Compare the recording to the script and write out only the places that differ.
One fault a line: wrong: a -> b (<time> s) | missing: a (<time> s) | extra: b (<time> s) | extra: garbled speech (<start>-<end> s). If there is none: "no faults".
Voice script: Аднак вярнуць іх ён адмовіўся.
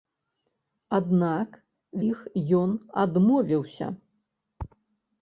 missing: вярнуць (1.5 s)